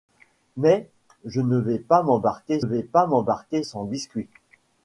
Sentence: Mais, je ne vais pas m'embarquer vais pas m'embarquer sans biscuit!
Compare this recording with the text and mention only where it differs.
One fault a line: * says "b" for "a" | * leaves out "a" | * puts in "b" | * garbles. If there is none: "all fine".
all fine